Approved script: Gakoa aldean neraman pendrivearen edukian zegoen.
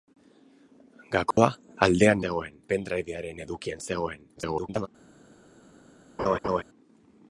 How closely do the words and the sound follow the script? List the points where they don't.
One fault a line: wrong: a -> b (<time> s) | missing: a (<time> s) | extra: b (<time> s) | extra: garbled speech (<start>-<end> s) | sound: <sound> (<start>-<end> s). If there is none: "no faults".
sound: dropout (1.3-1.4 s)
wrong: neraman -> zegoen (2.2 s)
extra: garbled speech (4.4-4.9 s)
sound: laugh (6.2-6.6 s)